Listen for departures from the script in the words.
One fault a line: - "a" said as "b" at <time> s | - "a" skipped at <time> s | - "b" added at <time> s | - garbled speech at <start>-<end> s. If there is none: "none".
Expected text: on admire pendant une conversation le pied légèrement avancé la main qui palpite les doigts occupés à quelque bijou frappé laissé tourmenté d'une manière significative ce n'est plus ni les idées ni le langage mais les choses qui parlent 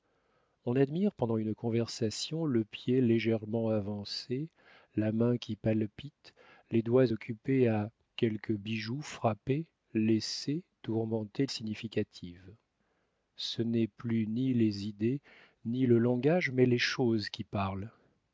- "d'une manière" skipped at 11.5 s